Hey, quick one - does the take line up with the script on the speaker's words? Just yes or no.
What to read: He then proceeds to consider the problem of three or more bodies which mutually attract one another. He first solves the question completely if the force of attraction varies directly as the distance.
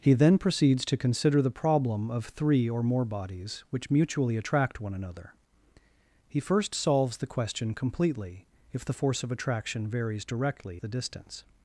no